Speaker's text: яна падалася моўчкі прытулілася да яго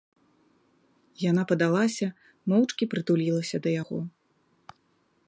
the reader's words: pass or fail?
pass